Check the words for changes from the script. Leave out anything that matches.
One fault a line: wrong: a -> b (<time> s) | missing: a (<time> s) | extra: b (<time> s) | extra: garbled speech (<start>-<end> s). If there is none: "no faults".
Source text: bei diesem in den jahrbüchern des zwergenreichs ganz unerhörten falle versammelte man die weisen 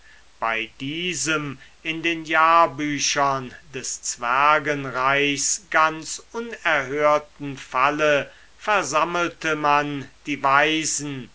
no faults